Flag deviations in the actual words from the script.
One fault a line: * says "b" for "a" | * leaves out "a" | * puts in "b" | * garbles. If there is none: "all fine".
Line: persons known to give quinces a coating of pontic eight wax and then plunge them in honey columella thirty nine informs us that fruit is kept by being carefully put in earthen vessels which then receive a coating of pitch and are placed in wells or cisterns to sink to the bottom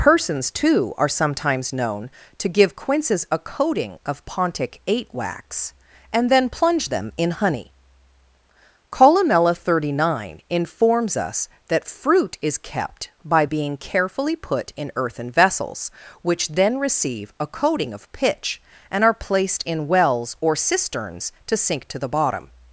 * puts in "too are sometimes"